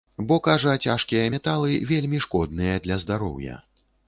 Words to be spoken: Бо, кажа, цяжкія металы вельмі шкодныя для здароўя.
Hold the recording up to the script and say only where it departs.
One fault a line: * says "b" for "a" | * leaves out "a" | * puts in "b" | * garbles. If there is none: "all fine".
all fine